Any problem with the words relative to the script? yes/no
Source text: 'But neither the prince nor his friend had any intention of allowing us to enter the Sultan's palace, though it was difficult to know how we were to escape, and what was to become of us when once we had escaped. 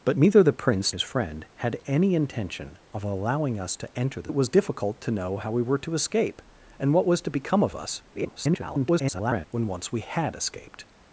yes